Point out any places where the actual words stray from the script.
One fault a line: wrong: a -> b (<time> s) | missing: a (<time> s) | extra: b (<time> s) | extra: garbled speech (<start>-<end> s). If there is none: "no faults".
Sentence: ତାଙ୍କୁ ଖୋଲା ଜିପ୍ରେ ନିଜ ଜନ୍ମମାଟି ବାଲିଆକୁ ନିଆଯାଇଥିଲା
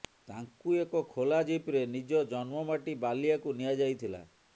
extra: ଏକ (0.8 s)